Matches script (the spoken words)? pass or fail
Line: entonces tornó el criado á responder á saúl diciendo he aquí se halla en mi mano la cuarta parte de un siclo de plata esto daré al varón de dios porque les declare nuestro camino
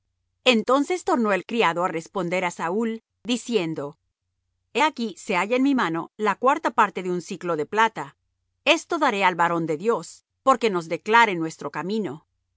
fail